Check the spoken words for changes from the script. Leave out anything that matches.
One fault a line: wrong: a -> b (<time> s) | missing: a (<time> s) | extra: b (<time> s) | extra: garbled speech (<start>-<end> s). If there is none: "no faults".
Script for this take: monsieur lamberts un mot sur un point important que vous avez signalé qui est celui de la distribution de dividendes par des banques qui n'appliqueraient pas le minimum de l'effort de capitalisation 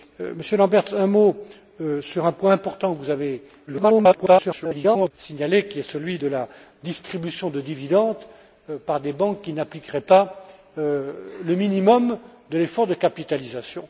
extra: garbled speech (3.7-5.1 s)